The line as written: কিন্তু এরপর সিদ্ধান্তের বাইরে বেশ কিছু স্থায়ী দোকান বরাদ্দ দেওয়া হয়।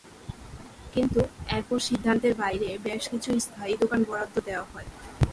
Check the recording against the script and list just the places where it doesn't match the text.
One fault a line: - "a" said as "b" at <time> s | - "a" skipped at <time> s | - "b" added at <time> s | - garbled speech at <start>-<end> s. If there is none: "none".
none